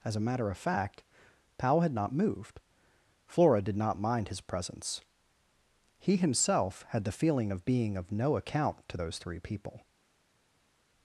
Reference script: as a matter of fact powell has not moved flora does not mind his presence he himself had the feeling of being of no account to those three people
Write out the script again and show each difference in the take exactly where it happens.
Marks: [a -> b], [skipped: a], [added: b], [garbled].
as a matter of fact powell [has -> had] not moved flora [does -> did] not mind his presence he himself had the feeling of being of no account to those three people